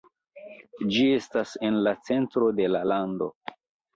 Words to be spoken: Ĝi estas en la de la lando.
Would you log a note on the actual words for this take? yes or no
yes